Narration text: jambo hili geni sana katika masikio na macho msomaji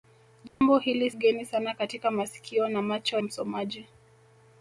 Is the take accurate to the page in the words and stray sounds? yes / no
no